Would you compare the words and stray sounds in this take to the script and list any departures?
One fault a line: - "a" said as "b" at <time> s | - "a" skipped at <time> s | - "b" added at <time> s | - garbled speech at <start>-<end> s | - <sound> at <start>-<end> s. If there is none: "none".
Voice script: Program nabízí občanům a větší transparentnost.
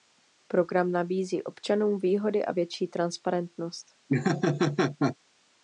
- "výhody" added at 2.0 s
- laugh at 4.1-5.2 s